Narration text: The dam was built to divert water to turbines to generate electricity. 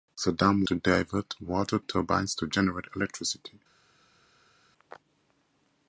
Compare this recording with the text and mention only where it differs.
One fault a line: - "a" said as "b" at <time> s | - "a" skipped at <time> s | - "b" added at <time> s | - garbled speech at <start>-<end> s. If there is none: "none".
- "was built" skipped at 0.7 s
- "to" skipped at 1.8 s